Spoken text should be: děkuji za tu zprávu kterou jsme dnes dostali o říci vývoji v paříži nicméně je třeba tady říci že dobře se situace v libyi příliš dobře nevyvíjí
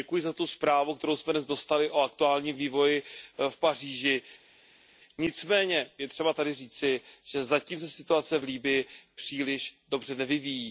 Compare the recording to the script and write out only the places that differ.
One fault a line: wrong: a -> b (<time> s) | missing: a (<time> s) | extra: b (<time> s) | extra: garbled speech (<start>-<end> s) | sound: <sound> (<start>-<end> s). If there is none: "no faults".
wrong: říci -> aktuálním (2.0 s)
wrong: dobře -> zatím (7.4 s)